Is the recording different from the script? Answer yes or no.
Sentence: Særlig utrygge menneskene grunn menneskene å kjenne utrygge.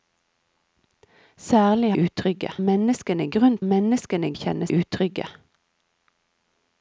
no